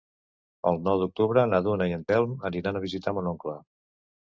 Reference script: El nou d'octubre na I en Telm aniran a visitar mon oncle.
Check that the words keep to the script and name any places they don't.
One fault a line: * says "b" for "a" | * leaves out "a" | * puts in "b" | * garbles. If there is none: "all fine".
* puts in "Duna"